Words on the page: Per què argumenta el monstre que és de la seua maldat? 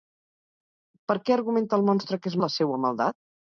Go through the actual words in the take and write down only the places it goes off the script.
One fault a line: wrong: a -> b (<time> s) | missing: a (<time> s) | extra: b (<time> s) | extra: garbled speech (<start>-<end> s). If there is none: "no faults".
no faults